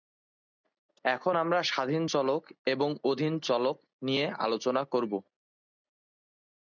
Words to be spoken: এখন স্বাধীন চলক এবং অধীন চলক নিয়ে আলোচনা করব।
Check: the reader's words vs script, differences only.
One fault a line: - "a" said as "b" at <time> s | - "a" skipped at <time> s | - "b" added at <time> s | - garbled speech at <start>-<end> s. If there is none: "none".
- "আমরা" added at 1.3 s